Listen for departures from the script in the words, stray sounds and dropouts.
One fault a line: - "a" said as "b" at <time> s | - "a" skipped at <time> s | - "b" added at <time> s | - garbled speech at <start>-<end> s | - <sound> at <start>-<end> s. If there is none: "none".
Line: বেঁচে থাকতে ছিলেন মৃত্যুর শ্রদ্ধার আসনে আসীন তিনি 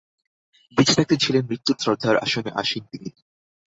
none